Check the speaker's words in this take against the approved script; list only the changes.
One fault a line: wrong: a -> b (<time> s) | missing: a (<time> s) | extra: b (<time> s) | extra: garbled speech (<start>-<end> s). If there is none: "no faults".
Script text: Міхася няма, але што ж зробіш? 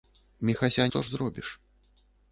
missing: няма але (0.9 s)